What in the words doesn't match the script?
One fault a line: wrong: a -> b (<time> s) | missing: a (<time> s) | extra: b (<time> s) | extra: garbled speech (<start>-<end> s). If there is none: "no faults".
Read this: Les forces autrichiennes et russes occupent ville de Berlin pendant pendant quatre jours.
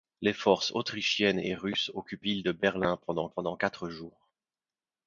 no faults